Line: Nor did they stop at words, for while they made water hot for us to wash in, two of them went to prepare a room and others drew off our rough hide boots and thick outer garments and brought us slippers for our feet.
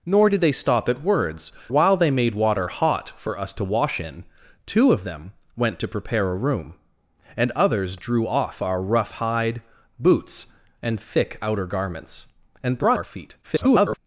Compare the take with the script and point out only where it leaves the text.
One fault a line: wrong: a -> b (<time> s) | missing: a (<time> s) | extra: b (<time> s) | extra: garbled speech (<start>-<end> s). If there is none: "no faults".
missing: for (1.5 s)
missing: us slippers for (13.0 s)
extra: garbled speech (13.4-14.0 s)